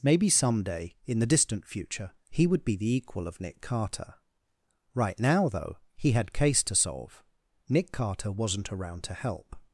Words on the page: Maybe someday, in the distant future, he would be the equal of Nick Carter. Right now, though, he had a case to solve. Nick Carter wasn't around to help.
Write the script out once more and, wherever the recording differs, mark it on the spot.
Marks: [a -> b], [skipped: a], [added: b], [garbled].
Maybe someday, in the distant future, he would be the equal of Nick Carter. Right now, though, he had [skipped: a] case to solve. Nick Carter wasn't around to help.